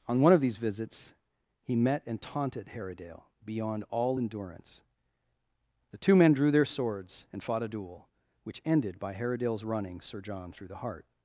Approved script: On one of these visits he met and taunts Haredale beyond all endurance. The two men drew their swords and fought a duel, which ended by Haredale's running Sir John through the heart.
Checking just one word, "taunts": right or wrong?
wrong